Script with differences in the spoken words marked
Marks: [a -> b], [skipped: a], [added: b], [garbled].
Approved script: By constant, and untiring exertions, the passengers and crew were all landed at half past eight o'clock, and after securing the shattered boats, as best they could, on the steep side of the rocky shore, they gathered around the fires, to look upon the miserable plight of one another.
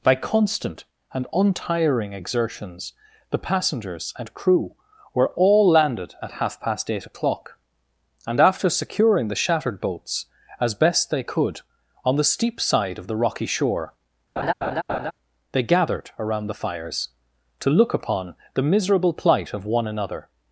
By constant, and untiring exertions, the passengers and crew were all landed at half past eight o'clock, and after securing the shattered boats, as best they could, on the steep side of the rocky shore, they gathered around the fires, to look upon the miserable plight of one another.